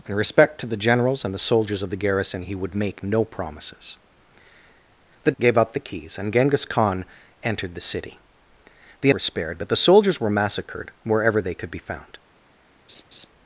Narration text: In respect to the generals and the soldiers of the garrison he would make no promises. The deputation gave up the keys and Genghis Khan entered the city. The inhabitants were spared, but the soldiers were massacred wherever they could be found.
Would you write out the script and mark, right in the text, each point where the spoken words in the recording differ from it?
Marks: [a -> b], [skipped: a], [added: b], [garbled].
In respect to the generals and the soldiers of the garrison he would make no promises. The [skipped: deputation] gave up the keys and Genghis Khan entered the city. The [skipped: inhabitants] were spared, but the soldiers were massacred wherever they could be found.